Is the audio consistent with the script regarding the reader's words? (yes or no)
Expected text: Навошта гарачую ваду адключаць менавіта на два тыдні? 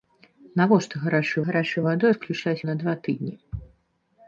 no